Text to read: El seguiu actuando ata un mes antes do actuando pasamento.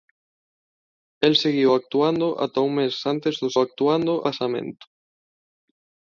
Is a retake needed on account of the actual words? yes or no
no